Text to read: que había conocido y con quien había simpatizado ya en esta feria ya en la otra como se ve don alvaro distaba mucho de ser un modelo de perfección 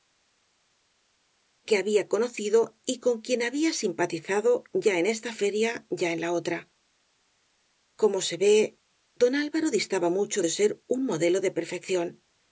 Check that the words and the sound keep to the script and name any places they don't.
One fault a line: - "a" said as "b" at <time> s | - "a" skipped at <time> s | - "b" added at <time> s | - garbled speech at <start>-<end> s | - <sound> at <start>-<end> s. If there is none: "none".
none